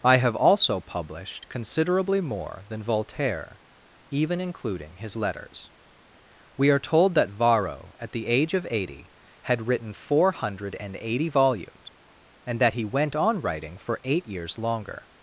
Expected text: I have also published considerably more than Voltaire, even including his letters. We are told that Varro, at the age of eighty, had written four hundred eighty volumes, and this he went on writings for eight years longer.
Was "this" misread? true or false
true